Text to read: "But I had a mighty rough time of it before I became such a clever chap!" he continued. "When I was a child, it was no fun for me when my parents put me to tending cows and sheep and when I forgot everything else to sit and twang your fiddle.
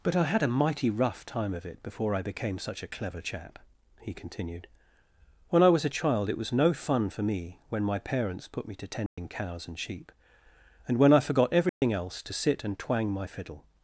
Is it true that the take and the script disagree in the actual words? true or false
true